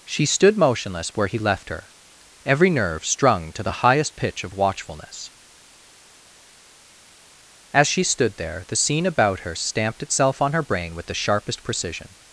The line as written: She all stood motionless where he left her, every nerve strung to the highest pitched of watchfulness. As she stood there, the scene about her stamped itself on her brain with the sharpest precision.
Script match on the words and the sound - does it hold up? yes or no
no